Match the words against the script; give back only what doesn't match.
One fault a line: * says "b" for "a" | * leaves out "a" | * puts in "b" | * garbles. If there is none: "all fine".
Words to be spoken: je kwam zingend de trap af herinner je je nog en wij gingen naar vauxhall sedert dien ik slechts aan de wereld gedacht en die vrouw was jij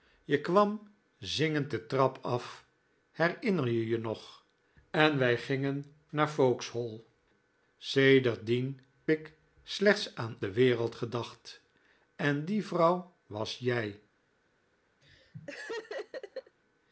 all fine